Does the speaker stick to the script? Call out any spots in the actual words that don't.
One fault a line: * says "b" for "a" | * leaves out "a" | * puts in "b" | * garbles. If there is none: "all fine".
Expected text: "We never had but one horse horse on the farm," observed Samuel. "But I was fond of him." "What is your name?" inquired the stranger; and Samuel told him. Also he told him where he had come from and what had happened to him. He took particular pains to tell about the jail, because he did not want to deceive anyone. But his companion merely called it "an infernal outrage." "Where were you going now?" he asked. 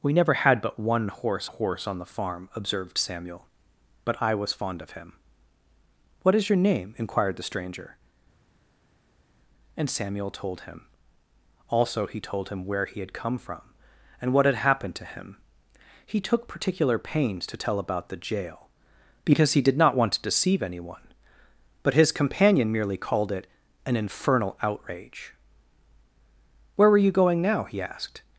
all fine